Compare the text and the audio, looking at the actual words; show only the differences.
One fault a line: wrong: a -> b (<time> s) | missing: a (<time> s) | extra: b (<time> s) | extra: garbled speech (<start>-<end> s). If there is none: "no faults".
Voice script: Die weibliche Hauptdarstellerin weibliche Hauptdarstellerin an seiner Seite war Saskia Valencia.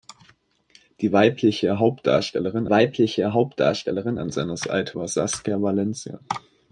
no faults